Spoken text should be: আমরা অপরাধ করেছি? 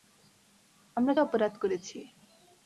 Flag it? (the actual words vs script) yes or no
no